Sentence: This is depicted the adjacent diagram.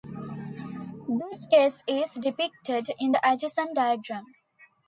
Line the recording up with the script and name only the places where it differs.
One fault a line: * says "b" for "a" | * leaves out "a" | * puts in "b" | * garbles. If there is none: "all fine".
* puts in "case"
* puts in "in"